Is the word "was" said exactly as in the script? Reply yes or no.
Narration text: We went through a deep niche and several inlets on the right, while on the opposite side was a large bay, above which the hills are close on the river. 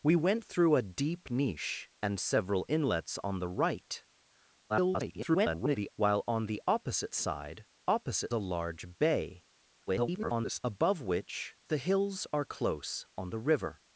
no